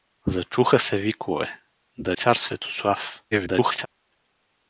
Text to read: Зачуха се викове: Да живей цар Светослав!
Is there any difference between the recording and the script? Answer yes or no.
yes